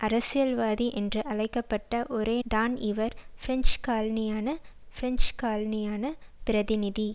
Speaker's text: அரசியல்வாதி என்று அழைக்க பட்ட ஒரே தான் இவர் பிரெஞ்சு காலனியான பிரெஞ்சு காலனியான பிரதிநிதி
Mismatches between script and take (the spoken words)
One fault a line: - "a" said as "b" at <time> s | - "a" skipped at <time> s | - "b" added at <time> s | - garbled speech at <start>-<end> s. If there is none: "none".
none